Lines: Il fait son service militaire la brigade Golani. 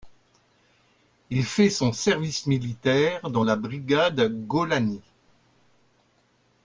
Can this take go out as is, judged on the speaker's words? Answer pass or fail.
fail